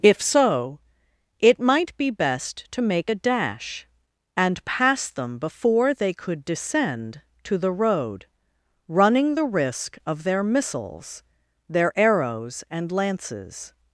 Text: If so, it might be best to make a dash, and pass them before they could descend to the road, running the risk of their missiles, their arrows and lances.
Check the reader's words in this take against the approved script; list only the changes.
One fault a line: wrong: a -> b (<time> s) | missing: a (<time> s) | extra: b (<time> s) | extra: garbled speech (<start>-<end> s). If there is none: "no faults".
no faults